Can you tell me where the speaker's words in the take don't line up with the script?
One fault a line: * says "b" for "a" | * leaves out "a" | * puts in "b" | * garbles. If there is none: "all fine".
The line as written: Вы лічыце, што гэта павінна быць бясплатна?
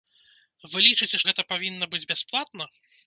* leaves out "што"